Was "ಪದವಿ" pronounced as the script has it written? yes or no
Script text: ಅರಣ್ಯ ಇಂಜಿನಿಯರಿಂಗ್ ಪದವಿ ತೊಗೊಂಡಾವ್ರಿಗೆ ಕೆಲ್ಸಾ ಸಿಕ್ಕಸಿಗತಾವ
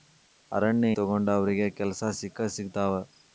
no